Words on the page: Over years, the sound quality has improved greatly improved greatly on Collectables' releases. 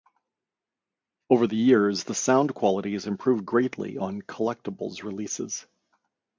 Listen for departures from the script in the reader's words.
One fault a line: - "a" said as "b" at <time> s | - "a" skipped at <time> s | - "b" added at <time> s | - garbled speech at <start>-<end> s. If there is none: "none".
- "the" added at 1.4 s
- "improved greatly" skipped at 4.0 s